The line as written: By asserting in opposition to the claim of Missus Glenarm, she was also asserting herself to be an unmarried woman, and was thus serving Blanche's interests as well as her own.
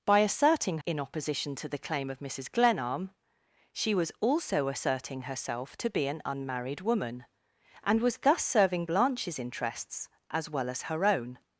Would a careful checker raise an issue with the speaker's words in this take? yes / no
no